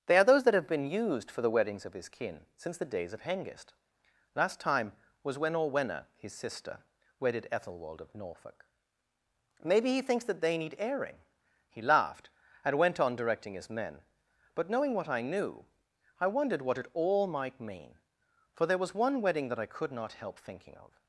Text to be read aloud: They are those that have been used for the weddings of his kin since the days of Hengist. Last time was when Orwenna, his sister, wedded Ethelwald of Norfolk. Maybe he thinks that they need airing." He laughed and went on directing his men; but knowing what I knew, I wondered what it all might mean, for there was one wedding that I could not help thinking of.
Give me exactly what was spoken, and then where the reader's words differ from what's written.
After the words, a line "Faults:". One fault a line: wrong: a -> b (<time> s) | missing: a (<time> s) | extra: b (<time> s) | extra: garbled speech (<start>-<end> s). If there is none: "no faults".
They are those that have been used for the weddings of his kin since the days of Hengist. Last time was when Orwenna, his sister, wedded Ethelwald of Norfolk. Maybe he thinks that they need airing." He laughed and went on directing his men; but knowing what I knew, I wondered what it all might mean, for there was one wedding that I could not help thinking of.
Faults:
no faults